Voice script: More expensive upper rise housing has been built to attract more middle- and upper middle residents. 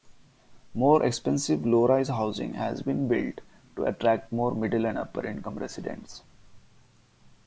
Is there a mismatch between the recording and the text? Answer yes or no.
yes